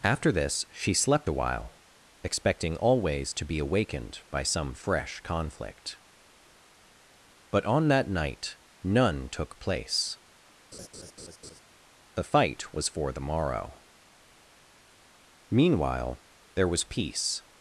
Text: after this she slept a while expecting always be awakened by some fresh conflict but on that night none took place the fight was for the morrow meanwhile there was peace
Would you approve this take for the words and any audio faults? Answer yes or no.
no